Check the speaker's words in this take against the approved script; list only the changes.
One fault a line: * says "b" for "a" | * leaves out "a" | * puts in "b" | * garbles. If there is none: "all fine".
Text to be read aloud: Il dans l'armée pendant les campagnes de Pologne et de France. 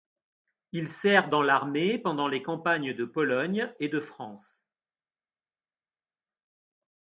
* puts in "sert"